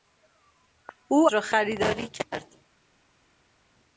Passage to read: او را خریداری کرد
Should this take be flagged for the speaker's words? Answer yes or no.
no